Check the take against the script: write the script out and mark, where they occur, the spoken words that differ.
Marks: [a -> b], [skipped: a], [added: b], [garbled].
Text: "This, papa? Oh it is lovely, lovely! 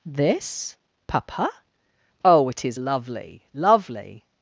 "This, papa? Oh it is lovely, lovely!